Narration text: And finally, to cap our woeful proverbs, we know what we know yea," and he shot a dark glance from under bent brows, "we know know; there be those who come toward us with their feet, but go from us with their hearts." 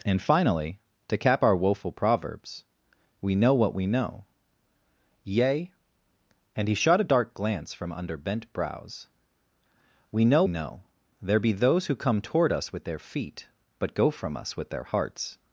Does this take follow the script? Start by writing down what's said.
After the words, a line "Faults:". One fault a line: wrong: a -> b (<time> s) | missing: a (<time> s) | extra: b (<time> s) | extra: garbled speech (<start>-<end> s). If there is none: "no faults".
And finally, to cap our woeful proverbs, we know what we know yea," and he shot a dark glance from under bent brows, "we know know; there be those who come toward us with their feet, but go from us with their hearts."
Faults:
no faults